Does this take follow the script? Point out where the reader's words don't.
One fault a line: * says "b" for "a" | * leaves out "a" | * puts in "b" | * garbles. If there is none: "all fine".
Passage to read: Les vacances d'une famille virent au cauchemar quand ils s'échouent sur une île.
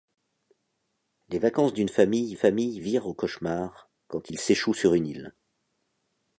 * puts in "famille"